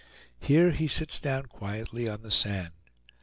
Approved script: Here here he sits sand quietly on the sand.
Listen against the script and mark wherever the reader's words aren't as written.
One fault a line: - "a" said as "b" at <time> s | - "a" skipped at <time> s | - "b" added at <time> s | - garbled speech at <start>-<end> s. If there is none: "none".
- "here" skipped at 0.7 s
- "sand" said as "down" at 1.2 s